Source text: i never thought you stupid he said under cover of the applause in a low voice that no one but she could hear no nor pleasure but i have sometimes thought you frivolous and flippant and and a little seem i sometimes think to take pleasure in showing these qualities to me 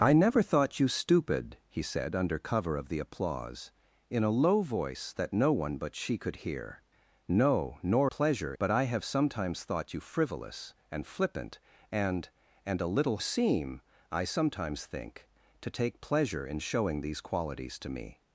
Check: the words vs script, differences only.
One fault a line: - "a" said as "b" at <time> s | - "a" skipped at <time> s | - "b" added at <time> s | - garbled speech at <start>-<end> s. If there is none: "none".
none